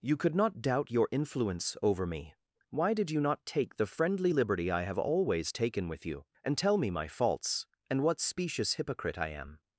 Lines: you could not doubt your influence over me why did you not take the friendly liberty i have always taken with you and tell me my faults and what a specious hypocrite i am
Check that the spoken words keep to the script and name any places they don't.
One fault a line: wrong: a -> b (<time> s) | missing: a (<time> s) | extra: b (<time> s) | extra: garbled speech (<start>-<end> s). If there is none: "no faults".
missing: a (8.2 s)